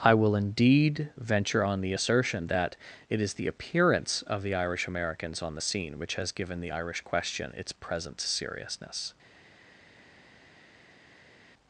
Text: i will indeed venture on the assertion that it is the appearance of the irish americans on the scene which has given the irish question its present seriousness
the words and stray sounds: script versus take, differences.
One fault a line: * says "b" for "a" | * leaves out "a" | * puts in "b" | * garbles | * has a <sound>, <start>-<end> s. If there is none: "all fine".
all fine